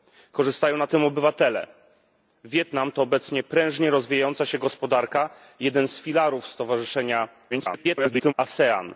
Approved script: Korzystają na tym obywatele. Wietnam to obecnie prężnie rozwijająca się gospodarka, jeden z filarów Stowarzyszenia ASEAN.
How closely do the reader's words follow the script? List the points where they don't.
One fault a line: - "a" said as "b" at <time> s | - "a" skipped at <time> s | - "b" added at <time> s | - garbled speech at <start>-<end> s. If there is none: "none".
- garbled speech at 7.5-8.3 s